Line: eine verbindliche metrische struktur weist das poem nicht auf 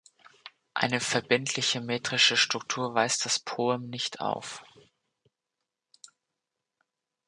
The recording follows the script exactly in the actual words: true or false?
true